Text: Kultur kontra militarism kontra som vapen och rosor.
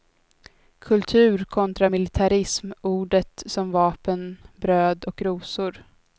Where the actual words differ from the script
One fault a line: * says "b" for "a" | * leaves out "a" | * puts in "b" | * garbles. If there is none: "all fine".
* says "ordet" for "kontra"
* puts in "bröd"